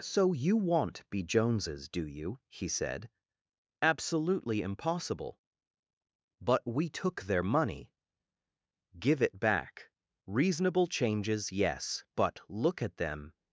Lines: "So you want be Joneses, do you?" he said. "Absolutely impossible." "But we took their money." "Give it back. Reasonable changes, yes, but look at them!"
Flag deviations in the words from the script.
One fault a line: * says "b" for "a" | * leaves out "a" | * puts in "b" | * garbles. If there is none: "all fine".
all fine